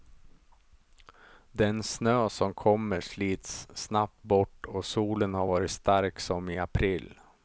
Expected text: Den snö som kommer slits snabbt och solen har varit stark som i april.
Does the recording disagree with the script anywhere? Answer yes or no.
yes